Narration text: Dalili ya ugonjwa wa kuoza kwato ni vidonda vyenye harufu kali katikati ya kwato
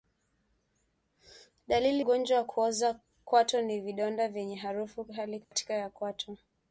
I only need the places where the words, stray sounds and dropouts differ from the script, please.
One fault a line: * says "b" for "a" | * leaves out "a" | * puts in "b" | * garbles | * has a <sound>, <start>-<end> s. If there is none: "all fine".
* leaves out "ya"
* has a dropout, 5.4-5.5 s